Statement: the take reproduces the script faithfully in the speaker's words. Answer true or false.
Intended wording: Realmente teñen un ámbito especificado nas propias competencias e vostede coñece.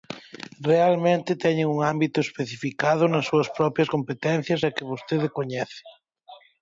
false